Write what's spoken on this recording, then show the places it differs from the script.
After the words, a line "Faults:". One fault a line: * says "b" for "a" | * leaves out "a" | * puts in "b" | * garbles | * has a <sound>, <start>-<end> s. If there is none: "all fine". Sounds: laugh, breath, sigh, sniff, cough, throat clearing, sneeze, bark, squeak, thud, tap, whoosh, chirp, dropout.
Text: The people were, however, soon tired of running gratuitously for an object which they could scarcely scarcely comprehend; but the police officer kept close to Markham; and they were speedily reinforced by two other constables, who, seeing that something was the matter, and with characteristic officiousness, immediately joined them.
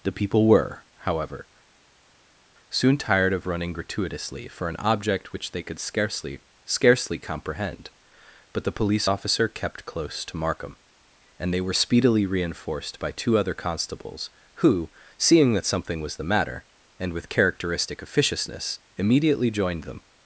The people were, however, soon tired of running gratuitously for an object which they could scarcely scarcely comprehend; but the police officer kept close to Markham; and they were speedily reinforced by two other constables, who, seeing that something was the matter, and with characteristic officiousness, immediately joined them.
Faults:
all fine